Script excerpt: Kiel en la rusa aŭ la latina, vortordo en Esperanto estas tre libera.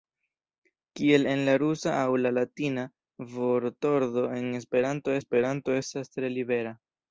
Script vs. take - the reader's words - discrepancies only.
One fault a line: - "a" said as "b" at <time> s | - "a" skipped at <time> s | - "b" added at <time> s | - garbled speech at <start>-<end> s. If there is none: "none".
- "Esperanto" added at 5.2 s